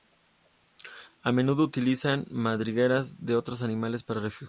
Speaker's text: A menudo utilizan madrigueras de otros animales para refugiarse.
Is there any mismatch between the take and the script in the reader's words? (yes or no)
no